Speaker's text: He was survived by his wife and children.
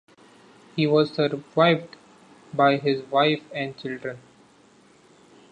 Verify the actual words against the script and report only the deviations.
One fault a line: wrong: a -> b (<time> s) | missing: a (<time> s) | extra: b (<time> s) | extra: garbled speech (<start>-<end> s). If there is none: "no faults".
no faults